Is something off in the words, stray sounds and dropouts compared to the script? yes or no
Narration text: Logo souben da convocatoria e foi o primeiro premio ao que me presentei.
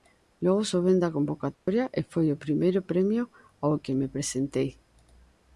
yes